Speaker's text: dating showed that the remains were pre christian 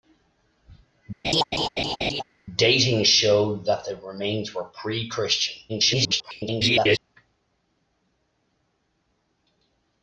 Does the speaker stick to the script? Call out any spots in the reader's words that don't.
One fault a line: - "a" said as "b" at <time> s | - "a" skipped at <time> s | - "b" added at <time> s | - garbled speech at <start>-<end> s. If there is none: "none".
- garbled speech at 5.7-7.0 s